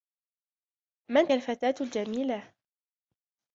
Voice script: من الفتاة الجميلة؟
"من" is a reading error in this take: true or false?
false